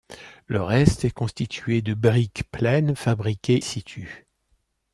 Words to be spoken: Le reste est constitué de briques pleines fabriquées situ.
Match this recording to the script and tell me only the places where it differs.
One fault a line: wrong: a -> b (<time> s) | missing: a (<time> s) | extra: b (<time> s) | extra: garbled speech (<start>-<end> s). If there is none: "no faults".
no faults